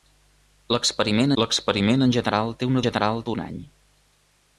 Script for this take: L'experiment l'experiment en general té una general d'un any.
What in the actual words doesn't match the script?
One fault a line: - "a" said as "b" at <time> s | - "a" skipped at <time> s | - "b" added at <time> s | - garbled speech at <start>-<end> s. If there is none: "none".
none